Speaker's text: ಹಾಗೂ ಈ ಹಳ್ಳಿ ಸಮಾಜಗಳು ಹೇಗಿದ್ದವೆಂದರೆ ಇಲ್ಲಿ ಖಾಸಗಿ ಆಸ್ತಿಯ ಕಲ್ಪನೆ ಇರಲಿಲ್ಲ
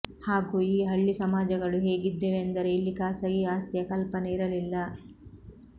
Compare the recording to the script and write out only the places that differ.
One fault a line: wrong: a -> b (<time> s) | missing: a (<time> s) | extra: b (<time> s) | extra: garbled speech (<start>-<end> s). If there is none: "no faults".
no faults